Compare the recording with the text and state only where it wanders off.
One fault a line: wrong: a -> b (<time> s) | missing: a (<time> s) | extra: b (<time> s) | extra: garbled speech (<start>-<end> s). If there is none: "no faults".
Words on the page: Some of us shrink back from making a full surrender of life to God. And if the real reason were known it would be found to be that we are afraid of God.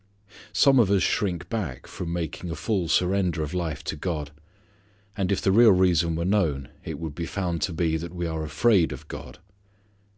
no faults